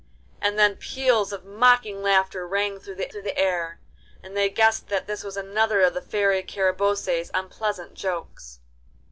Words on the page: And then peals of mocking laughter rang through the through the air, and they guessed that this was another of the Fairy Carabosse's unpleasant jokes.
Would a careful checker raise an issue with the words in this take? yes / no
no